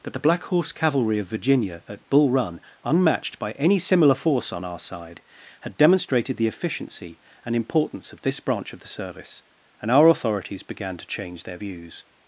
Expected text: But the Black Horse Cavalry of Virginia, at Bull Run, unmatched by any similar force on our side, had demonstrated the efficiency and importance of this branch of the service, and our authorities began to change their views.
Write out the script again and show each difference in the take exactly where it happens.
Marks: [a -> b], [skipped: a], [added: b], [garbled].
But the Black Horse Cavalry of Virginia, at Bull Run, unmatched by any similar force on our side, had demonstrated the efficiency and importance of this branch of the service, and our authorities began to change their views.